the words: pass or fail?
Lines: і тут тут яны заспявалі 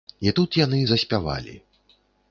fail